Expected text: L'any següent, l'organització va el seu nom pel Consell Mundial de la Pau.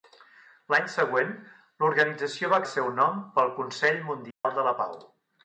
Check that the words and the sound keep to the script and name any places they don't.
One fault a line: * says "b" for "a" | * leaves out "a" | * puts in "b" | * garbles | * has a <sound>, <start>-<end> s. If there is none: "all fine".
* has a dropout, 4.3-4.4 s